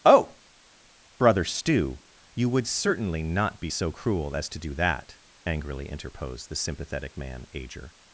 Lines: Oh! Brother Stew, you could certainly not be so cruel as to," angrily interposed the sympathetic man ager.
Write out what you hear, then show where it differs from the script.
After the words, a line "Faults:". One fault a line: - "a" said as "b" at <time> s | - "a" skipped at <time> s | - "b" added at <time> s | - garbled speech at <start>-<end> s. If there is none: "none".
Oh! Brother Stew, you would certainly not be so cruel as to do that," angrily interposed the sympathetic man ager.
Faults:
- "could" said as "would" at 2.5 s
- "do that" added at 4.6 s